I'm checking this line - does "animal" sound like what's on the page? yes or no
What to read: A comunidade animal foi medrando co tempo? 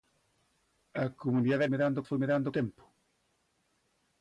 no